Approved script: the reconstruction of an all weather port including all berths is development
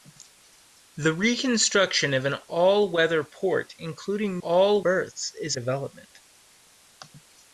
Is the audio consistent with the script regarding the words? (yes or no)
yes